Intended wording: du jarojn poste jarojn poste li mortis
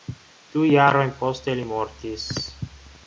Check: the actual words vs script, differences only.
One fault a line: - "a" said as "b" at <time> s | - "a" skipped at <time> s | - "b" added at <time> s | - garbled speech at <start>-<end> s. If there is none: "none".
- "jarojn poste" skipped at 1.6 s